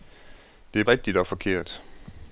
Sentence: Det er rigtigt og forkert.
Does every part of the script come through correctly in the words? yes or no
yes